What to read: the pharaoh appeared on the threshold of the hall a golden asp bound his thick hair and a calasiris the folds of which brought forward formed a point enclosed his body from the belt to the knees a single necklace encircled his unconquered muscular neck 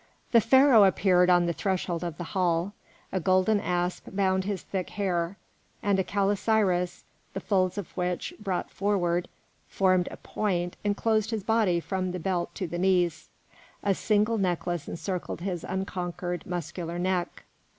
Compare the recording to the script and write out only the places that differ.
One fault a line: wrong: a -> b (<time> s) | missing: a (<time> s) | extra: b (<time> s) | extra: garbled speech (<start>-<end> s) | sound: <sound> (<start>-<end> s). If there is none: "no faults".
no faults